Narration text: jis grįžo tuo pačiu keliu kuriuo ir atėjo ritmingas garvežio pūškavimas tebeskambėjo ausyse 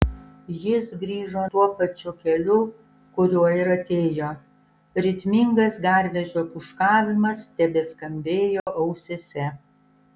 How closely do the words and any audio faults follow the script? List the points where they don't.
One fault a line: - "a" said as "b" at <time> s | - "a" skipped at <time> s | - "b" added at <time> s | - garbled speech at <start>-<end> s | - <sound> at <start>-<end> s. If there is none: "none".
- dropout at 8.6-8.7 s